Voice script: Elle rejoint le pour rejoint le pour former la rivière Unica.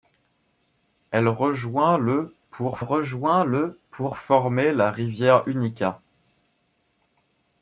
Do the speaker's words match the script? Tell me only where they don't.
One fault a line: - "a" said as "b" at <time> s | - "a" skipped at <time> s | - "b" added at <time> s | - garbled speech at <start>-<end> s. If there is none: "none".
none